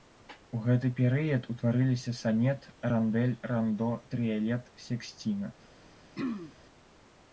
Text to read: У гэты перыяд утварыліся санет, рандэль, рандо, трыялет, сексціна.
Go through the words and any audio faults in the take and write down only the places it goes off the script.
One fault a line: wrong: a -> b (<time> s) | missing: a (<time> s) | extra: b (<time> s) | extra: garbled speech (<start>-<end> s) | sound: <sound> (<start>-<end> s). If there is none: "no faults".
sound: throat clearing (6.2-6.5 s)